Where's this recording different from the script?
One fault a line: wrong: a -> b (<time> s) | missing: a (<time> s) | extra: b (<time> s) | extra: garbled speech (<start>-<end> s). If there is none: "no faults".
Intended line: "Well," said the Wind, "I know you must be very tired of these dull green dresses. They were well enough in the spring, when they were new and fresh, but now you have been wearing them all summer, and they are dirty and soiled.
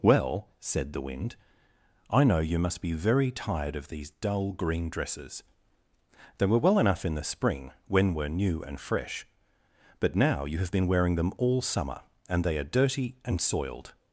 missing: they (8.1 s)